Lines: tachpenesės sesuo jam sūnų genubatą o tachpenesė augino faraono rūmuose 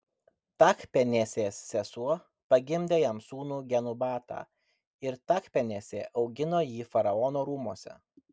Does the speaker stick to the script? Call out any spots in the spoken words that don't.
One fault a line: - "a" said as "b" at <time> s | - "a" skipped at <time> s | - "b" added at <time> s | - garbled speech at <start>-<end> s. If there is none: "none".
- "pagimdė" added at 2.5 s
- "o" said as "ir" at 5.1 s
- "jį" added at 6.7 s